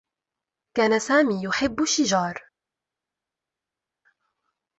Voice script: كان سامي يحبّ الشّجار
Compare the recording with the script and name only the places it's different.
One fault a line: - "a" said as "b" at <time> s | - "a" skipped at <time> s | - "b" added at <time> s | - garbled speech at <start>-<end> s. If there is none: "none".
none